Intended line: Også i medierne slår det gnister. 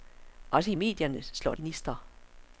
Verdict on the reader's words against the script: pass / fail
fail